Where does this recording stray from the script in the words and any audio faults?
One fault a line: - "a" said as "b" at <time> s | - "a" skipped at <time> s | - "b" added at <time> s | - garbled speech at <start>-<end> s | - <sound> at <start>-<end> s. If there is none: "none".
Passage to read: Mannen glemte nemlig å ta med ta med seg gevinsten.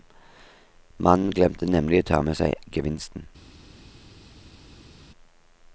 - "ta med" skipped at 2.4 s